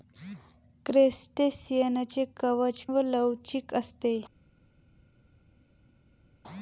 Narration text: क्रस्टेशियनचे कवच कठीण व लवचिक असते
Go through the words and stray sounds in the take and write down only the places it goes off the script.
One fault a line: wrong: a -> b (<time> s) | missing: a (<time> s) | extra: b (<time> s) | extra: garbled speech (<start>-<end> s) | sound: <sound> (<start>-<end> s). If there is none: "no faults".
missing: कठीण (2.9 s)